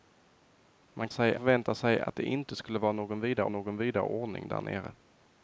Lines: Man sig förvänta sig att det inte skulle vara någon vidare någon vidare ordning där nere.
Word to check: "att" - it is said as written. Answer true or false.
true